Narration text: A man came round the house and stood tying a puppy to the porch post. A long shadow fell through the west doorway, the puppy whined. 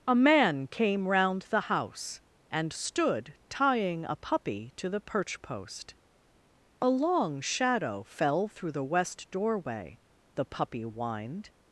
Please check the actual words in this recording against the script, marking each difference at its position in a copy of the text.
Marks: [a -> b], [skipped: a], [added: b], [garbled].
A man came round the house and stood tying a puppy to the [porch -> perch] post. A long shadow fell through the west doorway, the puppy whined.